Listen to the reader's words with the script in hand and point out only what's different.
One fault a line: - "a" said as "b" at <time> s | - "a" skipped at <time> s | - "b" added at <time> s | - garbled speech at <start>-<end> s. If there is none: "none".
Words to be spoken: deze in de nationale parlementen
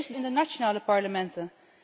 none